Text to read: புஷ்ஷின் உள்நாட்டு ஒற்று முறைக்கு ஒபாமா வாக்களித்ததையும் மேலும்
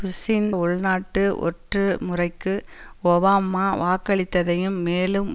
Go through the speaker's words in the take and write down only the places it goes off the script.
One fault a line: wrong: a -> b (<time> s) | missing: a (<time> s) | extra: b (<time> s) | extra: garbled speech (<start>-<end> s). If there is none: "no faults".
no faults